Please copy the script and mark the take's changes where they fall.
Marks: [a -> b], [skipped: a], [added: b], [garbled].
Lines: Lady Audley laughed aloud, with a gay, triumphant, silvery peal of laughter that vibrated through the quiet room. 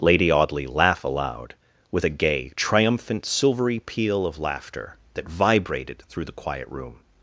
Lady Audley [laughed -> laugh] aloud, with a gay, triumphant, silvery peal of laughter that vibrated through the quiet room.